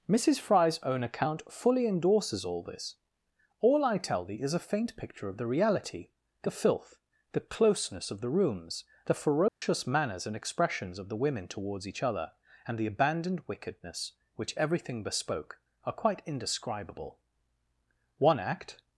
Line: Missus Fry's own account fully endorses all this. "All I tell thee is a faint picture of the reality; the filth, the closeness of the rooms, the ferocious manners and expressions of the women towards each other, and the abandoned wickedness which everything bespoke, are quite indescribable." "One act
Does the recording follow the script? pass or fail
pass